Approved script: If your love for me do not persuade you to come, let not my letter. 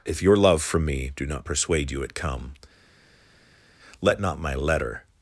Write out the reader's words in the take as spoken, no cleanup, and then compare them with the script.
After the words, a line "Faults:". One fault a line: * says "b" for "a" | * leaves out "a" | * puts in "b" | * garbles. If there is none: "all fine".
If your love from me do not persuade you at come, let not my letter.
Faults:
* says "from" for "for"
* says "at" for "to"